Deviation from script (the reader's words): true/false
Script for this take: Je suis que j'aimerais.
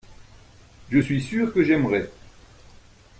true